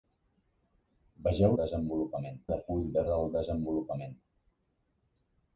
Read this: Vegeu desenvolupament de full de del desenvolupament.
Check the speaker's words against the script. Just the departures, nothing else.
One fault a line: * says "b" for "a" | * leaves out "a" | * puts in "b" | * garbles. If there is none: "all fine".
all fine